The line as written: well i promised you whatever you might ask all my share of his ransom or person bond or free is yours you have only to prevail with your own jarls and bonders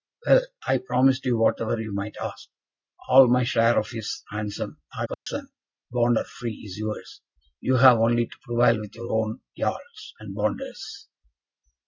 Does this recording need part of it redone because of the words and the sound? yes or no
yes